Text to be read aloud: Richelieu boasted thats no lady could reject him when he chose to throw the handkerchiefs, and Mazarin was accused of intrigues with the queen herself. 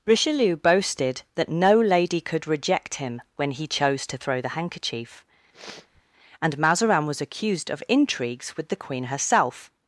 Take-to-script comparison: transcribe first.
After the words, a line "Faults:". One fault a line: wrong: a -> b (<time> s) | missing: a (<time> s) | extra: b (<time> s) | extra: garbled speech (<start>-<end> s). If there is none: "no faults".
Richelieu boasted that no lady could reject him when he chose to throw the handkerchief, and Mazarin was accused of intrigues with the queen herself.
Faults:
wrong: thats -> that (1.4 s)
wrong: handkerchiefs -> handkerchief (4.5 s)